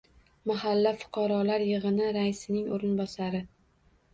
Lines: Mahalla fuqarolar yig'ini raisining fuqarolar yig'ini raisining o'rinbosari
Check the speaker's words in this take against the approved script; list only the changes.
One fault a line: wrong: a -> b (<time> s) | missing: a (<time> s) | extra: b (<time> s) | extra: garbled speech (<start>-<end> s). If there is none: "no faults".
missing: fuqarolar yig'ini raisining (2.7 s)